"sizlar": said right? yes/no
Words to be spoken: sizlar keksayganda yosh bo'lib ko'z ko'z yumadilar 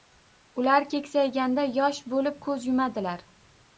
no